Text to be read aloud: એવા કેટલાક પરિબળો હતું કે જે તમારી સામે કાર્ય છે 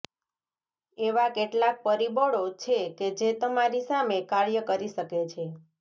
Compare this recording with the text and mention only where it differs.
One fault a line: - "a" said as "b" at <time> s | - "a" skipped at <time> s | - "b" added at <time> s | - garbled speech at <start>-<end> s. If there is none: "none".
- "હતું" said as "છે" at 2.6 s
- "કરી શકે" added at 4.7 s